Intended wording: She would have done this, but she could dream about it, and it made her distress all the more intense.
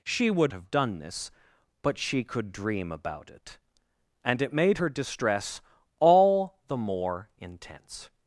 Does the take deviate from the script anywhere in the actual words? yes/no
no